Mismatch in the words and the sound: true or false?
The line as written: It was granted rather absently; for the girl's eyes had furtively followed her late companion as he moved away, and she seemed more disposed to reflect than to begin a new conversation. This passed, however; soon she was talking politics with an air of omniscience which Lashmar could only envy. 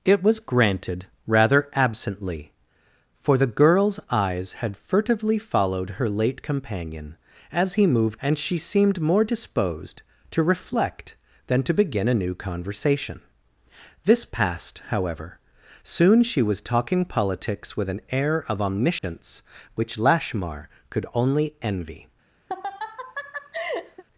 true